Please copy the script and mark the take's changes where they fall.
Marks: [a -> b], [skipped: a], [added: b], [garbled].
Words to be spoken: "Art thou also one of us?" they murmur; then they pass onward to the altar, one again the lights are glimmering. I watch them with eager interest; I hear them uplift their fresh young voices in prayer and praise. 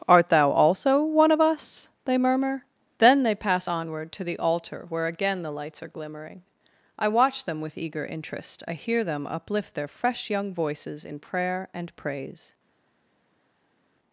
"Art thou also one of us?" they murmur; then they pass onward to the altar, [one -> where] again the lights are glimmering. I watch them with eager interest; I hear them uplift their fresh young voices in prayer and praise.